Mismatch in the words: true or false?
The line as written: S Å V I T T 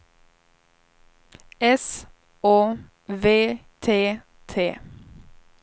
true